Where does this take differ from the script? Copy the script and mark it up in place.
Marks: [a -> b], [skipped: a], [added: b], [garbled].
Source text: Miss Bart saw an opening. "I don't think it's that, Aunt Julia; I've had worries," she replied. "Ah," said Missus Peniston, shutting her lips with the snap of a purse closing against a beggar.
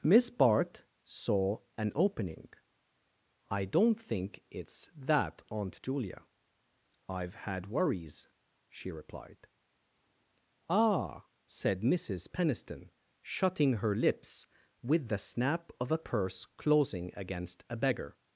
Miss Bart saw an opening. "I don't think it's that, Aunt Julia; I've had worries," she replied. "Ah," said Missus Peniston, shutting her lips with the snap of a purse closing against a beggar.